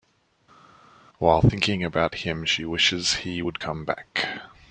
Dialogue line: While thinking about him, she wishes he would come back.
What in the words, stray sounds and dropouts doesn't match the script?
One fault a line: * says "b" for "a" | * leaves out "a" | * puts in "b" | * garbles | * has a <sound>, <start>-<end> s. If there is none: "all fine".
all fine